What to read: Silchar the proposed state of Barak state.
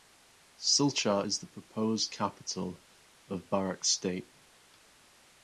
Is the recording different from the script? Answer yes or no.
yes